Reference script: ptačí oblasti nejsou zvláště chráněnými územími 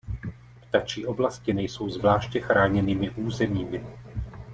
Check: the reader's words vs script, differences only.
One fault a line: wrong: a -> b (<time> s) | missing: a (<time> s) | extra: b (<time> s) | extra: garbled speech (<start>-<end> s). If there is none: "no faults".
no faults